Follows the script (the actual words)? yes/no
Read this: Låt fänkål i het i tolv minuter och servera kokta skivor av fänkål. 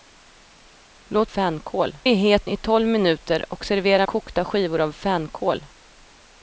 yes